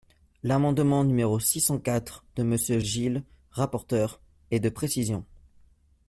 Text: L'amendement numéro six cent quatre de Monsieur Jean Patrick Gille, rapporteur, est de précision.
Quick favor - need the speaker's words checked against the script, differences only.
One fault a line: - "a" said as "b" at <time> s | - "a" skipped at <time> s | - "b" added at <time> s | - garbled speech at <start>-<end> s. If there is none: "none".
- "Jean Patrick" skipped at 2.8 s